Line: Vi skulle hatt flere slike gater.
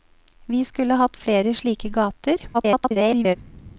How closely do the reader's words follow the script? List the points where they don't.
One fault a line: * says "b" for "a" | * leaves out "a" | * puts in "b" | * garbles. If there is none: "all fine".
* garbles